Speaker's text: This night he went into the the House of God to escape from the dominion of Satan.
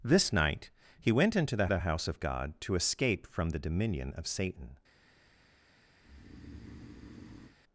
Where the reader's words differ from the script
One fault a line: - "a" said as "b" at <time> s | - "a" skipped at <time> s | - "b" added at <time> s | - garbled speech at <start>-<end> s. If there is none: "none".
none